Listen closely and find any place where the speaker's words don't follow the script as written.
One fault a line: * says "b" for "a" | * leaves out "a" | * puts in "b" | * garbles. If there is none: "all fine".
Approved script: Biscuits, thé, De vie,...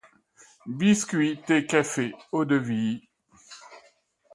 * puts in "Café eau"